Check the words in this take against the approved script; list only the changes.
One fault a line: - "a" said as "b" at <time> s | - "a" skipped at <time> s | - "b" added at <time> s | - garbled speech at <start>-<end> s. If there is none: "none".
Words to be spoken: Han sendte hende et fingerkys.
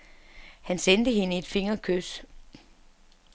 none